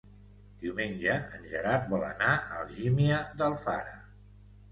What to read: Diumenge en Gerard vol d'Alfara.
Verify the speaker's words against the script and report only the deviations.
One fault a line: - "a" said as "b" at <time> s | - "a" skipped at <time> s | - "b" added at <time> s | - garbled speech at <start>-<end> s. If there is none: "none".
- "anar a Algímia" added at 2.1 s